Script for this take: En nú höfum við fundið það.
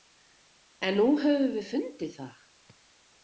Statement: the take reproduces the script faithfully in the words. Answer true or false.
true